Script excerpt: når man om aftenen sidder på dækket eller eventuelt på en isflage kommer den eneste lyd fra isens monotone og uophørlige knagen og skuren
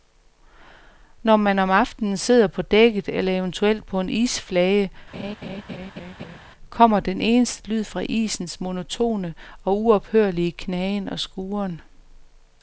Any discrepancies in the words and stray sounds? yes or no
yes